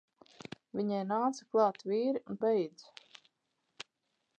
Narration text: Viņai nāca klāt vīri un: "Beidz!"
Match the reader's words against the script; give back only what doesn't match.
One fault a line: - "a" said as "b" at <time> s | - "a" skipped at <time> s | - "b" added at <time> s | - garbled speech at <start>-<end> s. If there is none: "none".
none